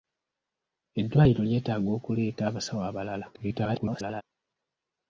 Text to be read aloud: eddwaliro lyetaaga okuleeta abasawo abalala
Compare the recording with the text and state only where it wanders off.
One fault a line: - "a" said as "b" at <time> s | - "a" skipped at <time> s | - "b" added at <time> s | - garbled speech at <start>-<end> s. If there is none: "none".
- garbled speech at 3.3-4.2 s